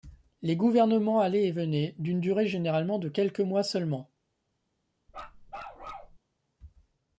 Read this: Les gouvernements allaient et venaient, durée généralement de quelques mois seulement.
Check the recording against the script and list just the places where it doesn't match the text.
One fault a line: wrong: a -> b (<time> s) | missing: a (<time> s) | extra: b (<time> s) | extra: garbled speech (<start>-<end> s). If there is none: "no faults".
extra: d'une (2.0 s)